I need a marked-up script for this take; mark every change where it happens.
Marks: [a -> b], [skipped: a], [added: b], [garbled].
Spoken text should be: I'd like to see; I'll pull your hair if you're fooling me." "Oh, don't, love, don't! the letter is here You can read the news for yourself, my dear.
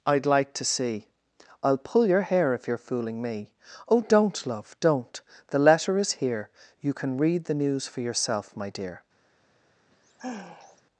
I'd like to see; I'll pull your hair if you're fooling me." "Oh, don't, love, don't! the letter is here You can read the news for yourself, my dear.